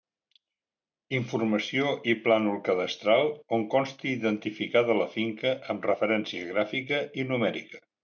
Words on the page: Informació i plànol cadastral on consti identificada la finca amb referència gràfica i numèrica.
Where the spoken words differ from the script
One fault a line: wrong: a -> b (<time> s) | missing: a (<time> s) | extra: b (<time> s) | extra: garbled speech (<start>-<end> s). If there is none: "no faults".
no faults